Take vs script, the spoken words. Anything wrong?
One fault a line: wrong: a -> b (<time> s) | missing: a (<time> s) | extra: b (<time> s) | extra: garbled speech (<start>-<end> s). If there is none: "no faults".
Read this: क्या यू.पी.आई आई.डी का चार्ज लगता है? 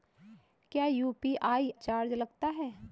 missing: आई.डी का (1.7 s)